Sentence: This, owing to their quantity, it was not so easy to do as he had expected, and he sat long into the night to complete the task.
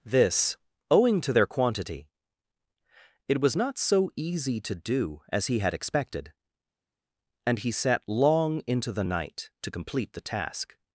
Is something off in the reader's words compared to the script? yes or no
no